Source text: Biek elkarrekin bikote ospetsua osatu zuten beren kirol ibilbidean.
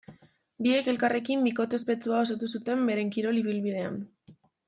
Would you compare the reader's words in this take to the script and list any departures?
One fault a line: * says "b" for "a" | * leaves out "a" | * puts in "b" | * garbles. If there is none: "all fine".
all fine